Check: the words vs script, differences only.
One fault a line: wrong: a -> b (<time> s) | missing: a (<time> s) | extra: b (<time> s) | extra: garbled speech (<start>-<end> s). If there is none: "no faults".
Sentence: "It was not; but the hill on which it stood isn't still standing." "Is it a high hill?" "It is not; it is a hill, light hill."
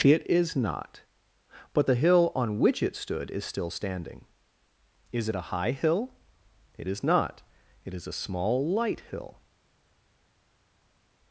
wrong: was -> is (0.3 s)
wrong: isn't -> is (3.3 s)
wrong: hill -> small (8.1 s)